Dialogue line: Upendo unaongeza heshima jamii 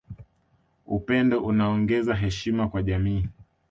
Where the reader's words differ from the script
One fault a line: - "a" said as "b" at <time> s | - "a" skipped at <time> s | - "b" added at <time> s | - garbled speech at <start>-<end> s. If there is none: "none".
- "kwa" added at 2.7 s